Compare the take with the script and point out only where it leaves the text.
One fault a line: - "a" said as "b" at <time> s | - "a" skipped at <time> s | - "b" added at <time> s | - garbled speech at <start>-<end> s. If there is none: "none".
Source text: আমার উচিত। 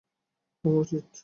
none